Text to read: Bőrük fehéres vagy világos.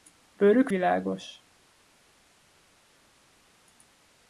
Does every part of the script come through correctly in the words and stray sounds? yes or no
no